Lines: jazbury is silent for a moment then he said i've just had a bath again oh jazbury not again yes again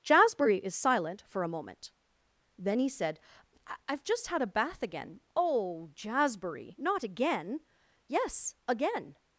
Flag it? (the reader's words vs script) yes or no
no